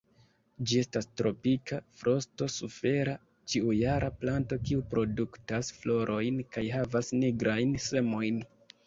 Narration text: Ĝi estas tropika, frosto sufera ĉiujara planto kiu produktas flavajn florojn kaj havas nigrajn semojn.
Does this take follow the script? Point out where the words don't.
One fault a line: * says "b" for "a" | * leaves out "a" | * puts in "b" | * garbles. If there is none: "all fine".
* leaves out "flavajn"